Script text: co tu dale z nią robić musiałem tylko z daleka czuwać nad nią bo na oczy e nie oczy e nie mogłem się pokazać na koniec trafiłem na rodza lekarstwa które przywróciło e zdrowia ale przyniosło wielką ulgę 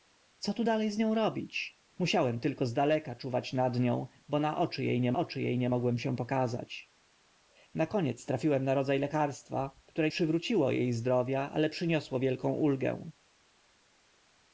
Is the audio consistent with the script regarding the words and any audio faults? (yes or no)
yes